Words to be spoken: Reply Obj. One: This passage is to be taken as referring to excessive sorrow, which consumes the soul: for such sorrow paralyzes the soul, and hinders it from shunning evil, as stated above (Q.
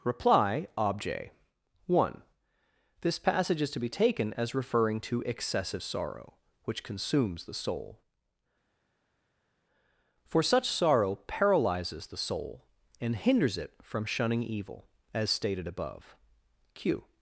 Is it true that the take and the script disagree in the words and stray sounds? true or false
false